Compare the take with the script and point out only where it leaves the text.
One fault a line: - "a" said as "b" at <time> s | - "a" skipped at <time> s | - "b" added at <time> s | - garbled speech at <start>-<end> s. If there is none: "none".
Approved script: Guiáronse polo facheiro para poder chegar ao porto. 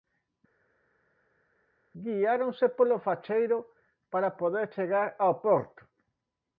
none